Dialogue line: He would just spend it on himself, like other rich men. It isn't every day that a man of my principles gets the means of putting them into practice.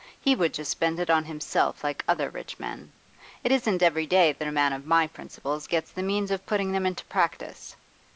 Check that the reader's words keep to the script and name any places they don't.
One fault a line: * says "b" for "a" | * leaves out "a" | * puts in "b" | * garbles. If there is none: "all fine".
all fine